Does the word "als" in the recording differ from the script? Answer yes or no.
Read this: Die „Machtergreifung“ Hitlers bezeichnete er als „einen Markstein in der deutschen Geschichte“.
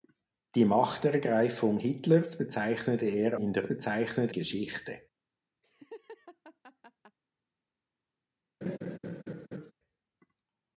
yes